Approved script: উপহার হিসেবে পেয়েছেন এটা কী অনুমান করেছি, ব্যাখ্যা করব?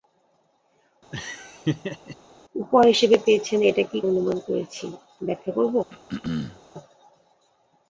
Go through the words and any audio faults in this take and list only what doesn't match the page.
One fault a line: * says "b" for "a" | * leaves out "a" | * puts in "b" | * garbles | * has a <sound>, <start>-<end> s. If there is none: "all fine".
* has a laugh, 1.1-2.2 s
* has a throat clearing, 5.9-6.6 s